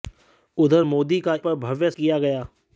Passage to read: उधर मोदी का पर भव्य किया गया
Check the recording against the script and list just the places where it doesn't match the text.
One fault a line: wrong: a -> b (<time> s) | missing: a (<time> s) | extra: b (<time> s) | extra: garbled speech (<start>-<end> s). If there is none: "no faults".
no faults